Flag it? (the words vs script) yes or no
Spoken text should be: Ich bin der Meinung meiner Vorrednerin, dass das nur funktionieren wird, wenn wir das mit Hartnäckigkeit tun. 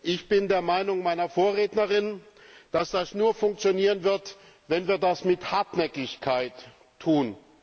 no